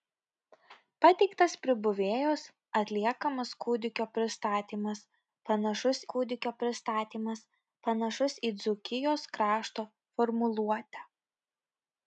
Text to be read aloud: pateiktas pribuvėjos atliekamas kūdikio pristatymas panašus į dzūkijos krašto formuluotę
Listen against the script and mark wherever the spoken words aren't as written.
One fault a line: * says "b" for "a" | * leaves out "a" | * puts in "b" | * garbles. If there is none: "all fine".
* puts in "kūdikio pristatymas panašus"